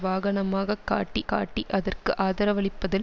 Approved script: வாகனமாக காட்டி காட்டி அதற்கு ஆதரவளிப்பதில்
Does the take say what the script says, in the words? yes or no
yes